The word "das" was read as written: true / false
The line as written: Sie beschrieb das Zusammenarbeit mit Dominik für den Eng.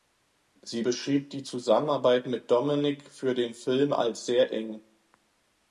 false